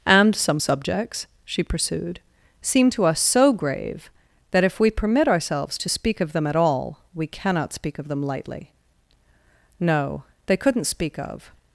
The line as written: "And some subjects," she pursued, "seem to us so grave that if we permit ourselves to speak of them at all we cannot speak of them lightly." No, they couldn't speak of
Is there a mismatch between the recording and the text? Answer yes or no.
no